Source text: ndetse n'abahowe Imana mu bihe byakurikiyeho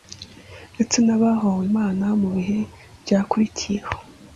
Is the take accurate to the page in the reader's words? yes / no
yes